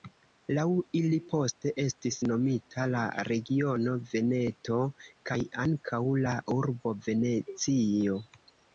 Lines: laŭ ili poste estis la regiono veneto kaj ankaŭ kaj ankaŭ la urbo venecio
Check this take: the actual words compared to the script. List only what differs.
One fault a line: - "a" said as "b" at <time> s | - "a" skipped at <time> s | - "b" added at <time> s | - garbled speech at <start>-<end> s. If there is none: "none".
- "nomita" added at 2.3 s
- "kaj ankaŭ" skipped at 6.0 s